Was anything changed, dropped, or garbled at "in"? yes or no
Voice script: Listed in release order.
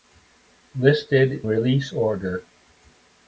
yes